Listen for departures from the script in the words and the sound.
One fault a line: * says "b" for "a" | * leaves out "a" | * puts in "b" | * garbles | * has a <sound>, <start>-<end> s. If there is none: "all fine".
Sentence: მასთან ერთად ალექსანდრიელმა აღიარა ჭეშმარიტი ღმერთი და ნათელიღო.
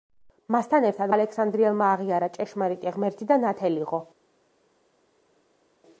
all fine